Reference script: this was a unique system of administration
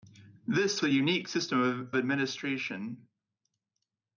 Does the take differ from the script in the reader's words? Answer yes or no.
yes